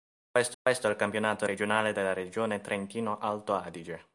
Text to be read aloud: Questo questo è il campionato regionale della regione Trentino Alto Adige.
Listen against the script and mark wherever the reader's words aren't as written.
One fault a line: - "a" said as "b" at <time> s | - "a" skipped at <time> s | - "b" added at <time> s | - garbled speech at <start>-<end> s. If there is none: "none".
none